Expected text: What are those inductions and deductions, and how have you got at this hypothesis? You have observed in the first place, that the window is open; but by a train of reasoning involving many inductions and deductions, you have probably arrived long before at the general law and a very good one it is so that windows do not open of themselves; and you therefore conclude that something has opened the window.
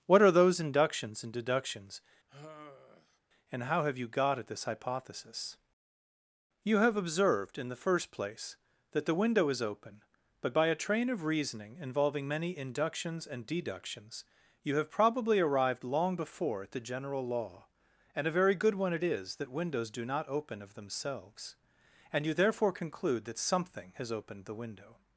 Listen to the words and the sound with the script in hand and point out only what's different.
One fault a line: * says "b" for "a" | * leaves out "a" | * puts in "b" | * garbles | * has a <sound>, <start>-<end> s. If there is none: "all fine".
* has a sigh, 2.3-3.2 s
* leaves out "so"